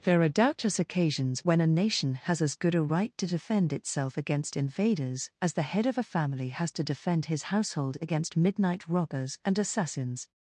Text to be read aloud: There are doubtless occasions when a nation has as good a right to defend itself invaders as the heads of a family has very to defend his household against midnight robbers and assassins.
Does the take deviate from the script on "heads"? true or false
true